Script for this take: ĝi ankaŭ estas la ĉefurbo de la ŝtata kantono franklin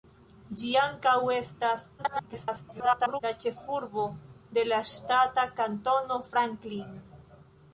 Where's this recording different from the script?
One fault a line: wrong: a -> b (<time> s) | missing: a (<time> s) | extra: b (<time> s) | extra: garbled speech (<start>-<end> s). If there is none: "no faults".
extra: garbled speech (2.0-3.2 s)